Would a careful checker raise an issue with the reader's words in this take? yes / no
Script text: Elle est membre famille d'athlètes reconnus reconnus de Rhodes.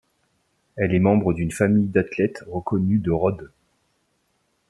yes